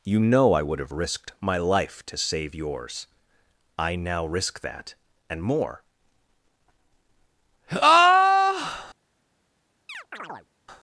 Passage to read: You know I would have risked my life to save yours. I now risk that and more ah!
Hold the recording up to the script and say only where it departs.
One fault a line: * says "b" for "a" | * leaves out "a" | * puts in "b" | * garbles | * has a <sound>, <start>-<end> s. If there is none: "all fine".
* has a chirp, 9.9-10.5 s